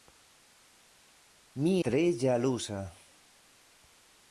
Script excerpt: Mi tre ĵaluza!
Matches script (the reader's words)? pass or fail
pass